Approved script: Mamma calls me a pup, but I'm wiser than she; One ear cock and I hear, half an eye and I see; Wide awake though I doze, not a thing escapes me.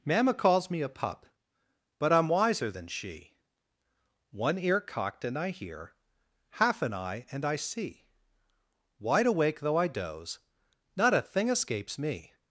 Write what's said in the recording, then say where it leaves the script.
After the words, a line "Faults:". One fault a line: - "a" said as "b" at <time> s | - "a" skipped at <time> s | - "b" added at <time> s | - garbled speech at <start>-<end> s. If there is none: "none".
Mamma calls me a pup, but I'm wiser than she; One ear cocked and I hear, half an eye and I see; Wide awake though I doze, not a thing escapes me.
Faults:
- "cock" said as "cocked" at 4.8 s